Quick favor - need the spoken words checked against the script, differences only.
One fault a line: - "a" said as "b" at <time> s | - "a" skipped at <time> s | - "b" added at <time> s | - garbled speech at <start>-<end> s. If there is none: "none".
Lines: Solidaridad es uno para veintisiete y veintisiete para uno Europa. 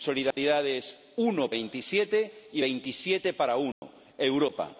- "para" skipped at 1.5 s